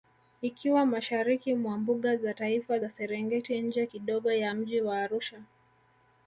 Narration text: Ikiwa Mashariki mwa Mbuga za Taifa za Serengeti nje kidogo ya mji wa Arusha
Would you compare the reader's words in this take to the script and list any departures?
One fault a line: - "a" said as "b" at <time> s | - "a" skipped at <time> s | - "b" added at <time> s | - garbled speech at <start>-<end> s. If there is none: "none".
none